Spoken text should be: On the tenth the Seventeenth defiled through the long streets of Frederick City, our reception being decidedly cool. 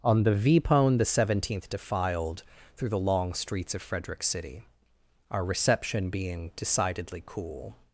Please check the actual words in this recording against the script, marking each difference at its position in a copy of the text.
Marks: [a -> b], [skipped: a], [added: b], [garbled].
On the [tenth -> vpone] the Seventeenth defiled through the long streets of Frederick City, our reception being decidedly cool.